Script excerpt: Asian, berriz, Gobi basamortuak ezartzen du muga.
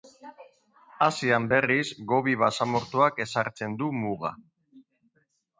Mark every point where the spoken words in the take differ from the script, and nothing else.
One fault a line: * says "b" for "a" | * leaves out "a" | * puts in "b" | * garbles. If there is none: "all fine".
all fine